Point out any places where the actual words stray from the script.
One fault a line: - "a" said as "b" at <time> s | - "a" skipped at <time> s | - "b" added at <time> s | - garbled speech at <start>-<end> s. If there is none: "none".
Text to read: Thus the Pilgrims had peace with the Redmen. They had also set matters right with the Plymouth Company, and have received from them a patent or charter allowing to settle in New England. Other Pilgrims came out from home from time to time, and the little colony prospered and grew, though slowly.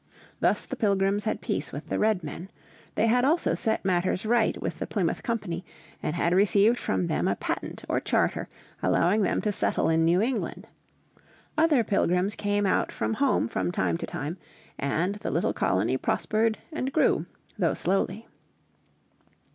- "have" said as "had" at 6.2 s
- "them" added at 9.2 s